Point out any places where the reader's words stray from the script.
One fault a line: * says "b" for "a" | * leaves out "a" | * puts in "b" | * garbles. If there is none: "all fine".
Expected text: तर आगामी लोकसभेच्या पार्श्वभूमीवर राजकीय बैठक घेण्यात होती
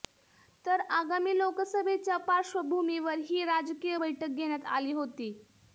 * puts in "ही"
* puts in "आली"